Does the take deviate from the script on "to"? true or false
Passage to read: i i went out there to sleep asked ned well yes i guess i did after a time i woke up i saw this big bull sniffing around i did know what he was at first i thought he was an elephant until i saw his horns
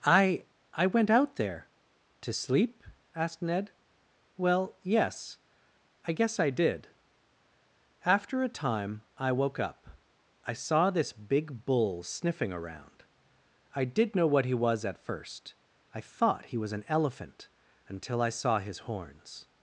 false